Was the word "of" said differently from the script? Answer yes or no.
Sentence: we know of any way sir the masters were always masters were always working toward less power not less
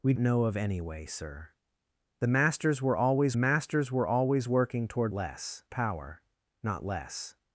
no